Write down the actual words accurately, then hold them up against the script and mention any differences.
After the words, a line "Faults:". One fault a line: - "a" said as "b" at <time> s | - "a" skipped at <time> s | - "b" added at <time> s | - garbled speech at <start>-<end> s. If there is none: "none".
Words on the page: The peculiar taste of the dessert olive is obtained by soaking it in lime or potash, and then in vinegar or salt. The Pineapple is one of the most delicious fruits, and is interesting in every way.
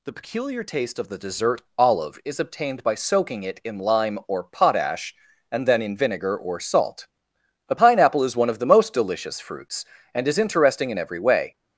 The peculiar taste of the dessert olive is obtained by soaking it in lime or potash, and then in vinegar or salt. A Pineapple is one of the most delicious fruits, and is interesting in every way.
Faults:
- "The" said as "A" at 7.7 s